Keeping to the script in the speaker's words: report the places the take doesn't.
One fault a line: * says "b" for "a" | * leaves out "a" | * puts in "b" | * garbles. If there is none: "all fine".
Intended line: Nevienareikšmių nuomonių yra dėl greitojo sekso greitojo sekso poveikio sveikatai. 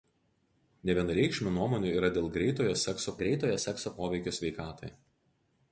all fine